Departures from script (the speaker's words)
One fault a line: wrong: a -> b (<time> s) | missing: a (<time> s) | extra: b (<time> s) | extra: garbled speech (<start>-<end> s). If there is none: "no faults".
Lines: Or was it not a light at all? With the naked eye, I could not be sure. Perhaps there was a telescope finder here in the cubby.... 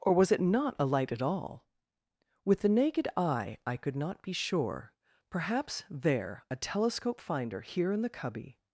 missing: was (6.4 s)